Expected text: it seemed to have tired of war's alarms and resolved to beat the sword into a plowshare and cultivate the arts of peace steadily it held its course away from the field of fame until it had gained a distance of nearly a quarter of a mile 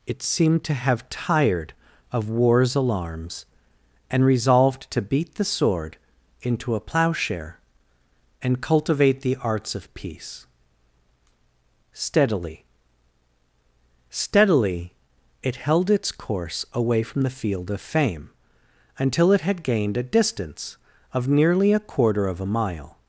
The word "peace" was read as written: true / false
true